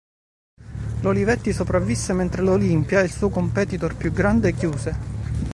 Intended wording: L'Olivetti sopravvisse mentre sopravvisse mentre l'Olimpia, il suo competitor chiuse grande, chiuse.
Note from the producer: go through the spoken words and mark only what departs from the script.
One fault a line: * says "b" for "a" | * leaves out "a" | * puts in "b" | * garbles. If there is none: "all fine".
* leaves out "sopravvisse mentre"
* says "più" for "chiuse"